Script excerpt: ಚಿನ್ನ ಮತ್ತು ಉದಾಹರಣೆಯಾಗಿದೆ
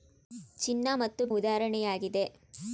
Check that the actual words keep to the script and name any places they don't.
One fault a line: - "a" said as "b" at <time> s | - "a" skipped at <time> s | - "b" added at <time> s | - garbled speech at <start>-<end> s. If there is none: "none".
none